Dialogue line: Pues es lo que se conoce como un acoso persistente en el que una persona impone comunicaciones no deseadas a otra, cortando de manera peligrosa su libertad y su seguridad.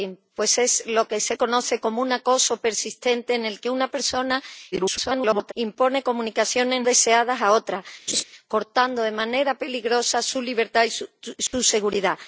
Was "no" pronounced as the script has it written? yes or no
no